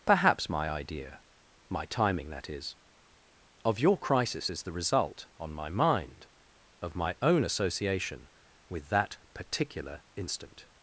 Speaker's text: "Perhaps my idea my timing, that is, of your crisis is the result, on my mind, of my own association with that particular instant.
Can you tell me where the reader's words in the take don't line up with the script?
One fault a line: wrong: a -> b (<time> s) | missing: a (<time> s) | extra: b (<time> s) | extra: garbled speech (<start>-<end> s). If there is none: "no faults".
no faults